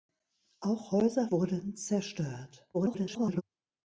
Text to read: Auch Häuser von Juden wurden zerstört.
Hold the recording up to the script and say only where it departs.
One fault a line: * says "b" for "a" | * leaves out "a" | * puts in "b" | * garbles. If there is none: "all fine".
* leaves out "von Juden"
* garbles